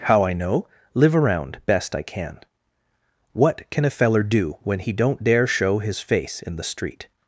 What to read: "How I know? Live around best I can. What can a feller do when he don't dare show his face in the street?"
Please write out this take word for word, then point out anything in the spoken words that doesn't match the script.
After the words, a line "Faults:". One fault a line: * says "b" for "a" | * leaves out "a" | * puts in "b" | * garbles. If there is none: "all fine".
"How I know? Live around best I can. What can a feller do when he don't dare show his face in the street?"
Faults:
all fine